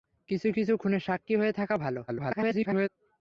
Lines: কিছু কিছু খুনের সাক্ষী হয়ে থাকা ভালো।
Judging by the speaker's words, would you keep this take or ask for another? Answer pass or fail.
fail